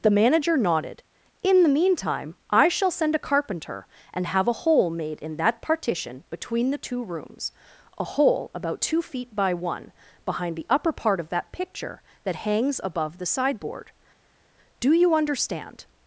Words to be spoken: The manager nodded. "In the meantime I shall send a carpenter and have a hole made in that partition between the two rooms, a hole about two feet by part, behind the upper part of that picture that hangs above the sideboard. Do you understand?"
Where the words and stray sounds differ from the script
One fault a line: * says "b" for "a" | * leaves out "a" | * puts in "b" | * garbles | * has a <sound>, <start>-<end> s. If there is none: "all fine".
* says "one" for "part"